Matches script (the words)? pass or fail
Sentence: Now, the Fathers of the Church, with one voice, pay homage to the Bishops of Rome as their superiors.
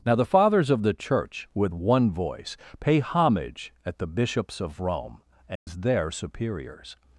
fail